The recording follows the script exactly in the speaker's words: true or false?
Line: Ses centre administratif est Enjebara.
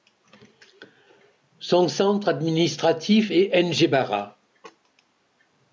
false